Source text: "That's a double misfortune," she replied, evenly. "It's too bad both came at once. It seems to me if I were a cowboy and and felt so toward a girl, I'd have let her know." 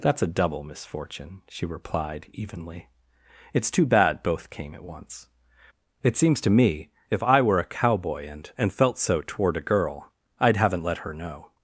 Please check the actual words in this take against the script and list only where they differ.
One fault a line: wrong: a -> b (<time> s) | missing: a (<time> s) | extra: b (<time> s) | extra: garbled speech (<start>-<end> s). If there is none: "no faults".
wrong: have -> haven't (10.6 s)